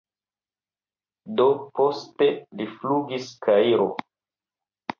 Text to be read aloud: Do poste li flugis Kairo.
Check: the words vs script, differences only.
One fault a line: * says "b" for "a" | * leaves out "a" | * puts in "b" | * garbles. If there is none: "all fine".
all fine